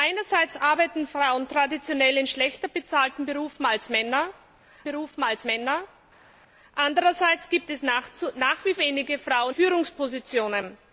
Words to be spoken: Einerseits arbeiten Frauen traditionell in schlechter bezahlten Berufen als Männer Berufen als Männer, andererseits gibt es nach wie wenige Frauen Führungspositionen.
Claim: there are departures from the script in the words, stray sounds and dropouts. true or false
false